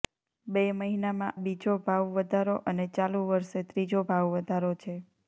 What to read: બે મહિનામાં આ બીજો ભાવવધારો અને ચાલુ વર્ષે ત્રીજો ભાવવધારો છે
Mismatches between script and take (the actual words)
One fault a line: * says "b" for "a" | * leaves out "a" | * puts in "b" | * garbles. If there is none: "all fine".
* leaves out "આ"